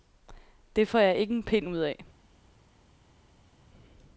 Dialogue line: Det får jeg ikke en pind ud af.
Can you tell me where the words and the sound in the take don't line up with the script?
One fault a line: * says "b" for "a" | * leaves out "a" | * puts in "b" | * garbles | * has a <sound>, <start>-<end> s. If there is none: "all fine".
all fine